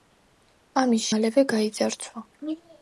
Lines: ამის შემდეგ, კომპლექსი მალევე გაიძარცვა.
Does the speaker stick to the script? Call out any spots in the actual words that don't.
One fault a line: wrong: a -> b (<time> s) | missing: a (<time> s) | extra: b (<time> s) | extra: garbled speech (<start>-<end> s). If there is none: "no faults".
missing: შემდეგ კომპლექსი (1.1 s)